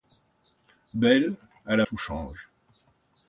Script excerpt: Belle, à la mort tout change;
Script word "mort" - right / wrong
wrong